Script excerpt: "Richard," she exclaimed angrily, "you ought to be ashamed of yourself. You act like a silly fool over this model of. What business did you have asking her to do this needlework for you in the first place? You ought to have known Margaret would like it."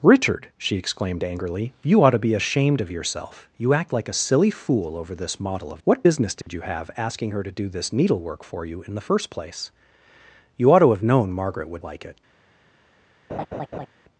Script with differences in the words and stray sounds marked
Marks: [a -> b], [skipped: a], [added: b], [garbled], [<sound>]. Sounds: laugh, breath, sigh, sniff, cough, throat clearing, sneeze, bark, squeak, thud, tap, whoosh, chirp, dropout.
"Richard," she exclaimed angrily, "you ought to be ashamed of yourself. You act like a silly fool over this model of. What business did [dropout] you have asking her to do this needlework for you in the first place? You ought to have known Margaret would like it." [laugh]